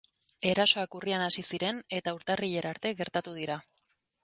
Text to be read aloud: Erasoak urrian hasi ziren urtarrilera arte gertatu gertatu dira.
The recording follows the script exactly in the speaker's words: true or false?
false